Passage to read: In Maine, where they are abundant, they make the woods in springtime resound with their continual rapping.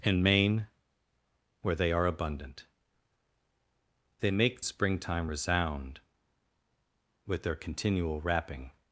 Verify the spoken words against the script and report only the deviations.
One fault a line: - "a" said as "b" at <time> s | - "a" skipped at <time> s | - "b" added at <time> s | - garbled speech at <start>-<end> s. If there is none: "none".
- "the woods in" skipped at 4.6 s